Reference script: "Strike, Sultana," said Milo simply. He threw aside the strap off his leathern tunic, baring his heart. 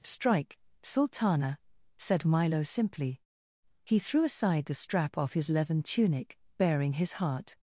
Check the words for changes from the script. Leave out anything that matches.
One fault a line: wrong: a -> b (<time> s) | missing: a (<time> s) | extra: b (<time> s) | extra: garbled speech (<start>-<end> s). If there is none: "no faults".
no faults